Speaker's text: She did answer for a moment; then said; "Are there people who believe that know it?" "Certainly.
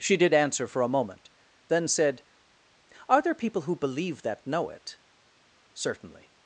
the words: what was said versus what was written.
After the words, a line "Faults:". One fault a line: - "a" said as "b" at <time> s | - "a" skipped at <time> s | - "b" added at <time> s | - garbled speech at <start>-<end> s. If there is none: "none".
She did answer for a moment; then said; "Are there people who believe that know it?" "Certainly.
Faults:
none